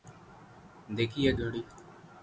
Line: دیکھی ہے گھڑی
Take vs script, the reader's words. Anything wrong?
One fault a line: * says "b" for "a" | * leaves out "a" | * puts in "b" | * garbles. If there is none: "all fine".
all fine